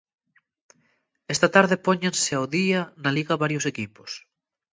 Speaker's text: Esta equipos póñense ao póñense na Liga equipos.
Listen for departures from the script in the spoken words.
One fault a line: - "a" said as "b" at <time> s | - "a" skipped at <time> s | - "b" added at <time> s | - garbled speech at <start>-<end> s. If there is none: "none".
- "equipos" said as "tarde" at 1.6 s
- "póñense" said as "día" at 2.6 s
- "varios" added at 3.4 s